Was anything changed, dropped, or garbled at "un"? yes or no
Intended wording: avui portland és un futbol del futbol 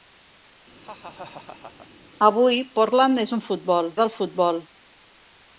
no